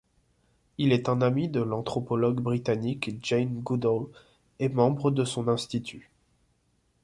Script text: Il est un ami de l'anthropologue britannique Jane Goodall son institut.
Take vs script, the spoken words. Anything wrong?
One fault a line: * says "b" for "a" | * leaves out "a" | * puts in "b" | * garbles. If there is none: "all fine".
* puts in "et membre de"